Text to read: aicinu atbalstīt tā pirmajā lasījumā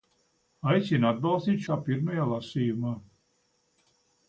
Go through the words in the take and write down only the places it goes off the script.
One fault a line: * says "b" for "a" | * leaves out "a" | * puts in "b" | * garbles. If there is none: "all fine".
all fine